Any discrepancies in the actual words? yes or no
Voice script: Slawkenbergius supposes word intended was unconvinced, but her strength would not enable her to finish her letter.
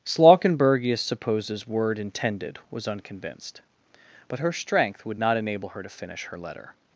no